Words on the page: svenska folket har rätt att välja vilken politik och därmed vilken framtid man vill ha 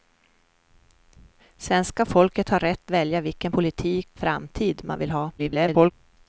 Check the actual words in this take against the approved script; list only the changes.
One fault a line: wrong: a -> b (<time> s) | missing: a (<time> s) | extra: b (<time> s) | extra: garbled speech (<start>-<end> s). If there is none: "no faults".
missing: att (2.9 s)
missing: och därmed vilken (4.1 s)
extra: garbled speech (5.4-5.9 s)